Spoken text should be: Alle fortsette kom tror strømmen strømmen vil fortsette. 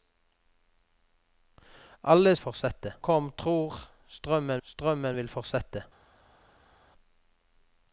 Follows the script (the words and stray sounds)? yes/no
yes